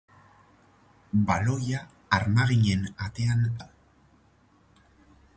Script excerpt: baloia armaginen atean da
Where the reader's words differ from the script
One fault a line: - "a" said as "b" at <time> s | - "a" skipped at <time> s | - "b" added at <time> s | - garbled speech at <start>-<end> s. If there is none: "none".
none